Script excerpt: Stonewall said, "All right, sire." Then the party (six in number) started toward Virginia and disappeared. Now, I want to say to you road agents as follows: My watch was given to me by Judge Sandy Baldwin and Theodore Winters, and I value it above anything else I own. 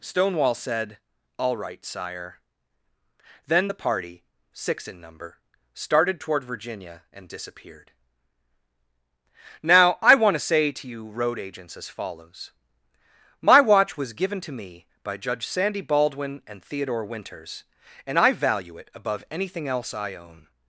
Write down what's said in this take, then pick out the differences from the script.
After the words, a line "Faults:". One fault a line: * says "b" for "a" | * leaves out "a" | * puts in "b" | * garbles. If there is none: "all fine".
Stonewall said, "All right, sire." Then the party (six in number) started toward Virginia and disappeared. Now, I want to say to you road agents as follows: My watch was given to me by Judge Sandy Baldwin and Theodore Winters, and I value it above anything else I own.
Faults:
all fine